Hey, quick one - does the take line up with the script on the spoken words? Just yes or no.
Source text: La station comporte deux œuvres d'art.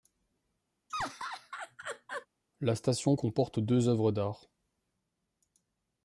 yes